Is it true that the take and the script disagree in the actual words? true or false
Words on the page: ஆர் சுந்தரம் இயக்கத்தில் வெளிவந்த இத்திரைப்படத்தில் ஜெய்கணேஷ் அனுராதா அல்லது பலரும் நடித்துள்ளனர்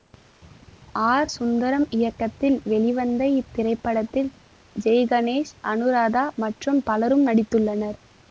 true